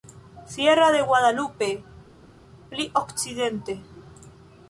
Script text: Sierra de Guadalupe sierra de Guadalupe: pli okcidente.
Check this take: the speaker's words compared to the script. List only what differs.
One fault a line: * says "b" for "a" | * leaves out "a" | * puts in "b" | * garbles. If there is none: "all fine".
* leaves out "sierra de Guadalupe"